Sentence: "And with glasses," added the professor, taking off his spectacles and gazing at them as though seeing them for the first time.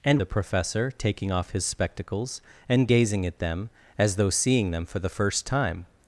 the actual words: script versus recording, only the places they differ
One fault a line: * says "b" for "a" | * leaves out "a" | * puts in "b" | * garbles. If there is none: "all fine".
* leaves out "with glasses added"